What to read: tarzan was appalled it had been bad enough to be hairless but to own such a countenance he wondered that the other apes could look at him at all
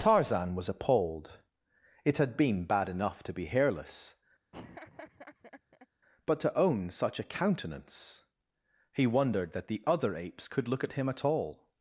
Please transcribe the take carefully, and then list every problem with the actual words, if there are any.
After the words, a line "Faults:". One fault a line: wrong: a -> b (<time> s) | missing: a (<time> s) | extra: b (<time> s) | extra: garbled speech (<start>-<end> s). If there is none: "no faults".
tarzan was appalled it had been bad enough to be hairless but to own such a countenance he wondered that the other apes could look at him at all
Faults:
no faults